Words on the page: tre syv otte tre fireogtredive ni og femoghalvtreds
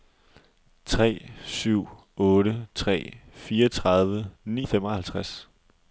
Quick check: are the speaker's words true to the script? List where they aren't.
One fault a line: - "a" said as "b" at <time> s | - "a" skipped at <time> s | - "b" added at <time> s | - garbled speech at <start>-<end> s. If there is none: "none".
none